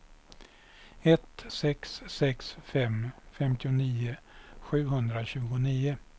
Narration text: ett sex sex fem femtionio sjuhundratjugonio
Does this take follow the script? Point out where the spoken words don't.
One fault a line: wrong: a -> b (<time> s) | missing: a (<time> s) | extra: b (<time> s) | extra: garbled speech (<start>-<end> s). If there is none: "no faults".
no faults